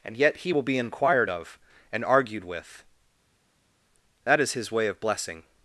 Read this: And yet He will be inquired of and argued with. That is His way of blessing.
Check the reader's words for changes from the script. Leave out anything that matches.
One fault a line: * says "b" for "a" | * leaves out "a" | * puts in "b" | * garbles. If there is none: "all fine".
all fine